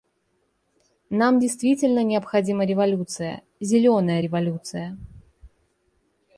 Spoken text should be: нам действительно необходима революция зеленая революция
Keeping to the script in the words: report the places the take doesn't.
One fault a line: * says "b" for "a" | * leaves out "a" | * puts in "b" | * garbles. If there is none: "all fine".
all fine